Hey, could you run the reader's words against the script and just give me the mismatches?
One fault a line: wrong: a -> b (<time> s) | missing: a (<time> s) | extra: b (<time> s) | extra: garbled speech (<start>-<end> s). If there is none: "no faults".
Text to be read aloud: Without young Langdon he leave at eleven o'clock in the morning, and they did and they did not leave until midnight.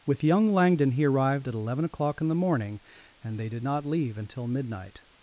wrong: Without -> With (0.1 s)
wrong: leave -> arrived (1.1 s)
missing: and they did (3.6 s)